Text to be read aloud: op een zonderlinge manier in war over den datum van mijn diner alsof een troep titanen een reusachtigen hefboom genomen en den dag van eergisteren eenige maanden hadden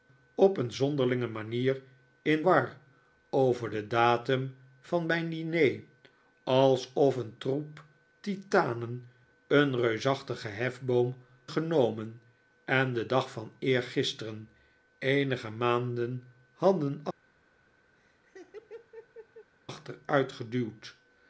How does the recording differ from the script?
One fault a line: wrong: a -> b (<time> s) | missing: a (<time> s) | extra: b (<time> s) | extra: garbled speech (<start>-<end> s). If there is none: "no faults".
no faults